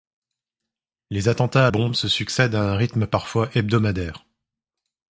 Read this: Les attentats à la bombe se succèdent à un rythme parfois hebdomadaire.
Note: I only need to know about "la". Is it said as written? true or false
false